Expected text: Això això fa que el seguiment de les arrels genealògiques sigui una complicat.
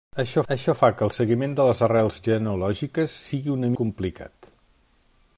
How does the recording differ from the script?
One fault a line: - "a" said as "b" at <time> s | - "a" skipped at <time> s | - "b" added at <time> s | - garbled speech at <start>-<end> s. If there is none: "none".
none